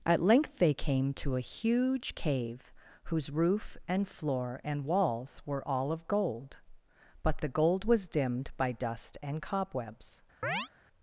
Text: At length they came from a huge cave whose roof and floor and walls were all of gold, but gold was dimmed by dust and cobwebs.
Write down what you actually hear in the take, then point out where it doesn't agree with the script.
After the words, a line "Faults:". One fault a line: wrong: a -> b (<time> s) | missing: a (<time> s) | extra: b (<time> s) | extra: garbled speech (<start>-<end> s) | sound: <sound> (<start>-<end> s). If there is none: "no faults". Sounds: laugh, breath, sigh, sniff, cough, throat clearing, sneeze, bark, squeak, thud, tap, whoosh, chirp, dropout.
At length they came to a huge cave whose roof and floor and walls were all of gold, but the gold was dimmed by dust and cobwebs.
Faults:
wrong: from -> to (1.1 s)
extra: the (7.4 s)
sound: chirp (10.4-10.7 s)